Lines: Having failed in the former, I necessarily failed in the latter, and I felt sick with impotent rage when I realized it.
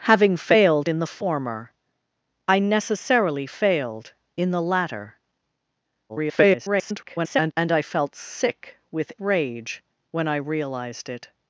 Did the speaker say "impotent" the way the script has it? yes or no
no